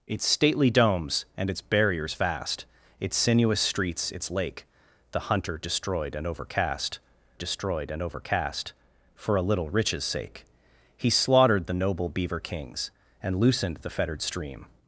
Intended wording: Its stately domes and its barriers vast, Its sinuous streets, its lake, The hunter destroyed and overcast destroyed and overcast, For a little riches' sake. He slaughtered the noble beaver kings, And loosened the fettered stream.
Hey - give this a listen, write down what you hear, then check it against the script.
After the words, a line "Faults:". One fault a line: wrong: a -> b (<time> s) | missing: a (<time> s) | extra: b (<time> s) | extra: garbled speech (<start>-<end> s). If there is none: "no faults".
Its stately domes and its barriers vast, Its sinuous streets, its lake, The hunter destroyed and overcast destroyed and overcast, For a little riches' sake. He slaughtered the noble beaver kings, And loosened the fettered stream.
Faults:
no faults